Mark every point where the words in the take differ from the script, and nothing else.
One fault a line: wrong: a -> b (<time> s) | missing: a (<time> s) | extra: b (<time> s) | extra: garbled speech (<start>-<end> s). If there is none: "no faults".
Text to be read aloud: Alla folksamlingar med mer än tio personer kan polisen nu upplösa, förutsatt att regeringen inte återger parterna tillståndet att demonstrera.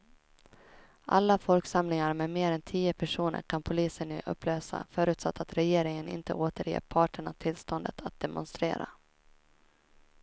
no faults